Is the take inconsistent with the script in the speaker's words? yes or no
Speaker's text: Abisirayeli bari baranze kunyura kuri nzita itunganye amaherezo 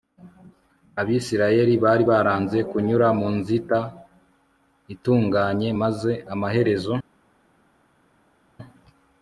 yes